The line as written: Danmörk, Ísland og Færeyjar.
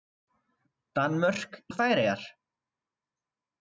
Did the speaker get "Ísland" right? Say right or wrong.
wrong